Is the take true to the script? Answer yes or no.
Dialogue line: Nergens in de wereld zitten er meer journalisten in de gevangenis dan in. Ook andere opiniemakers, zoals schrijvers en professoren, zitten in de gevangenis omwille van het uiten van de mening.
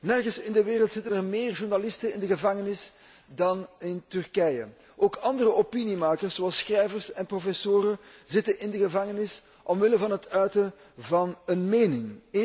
no